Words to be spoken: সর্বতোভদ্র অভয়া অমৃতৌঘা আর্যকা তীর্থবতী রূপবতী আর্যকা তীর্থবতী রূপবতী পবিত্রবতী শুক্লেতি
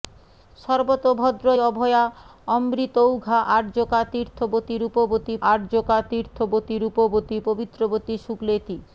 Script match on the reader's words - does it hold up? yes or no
yes